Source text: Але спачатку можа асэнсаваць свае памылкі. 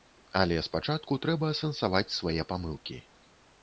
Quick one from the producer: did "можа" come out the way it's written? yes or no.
no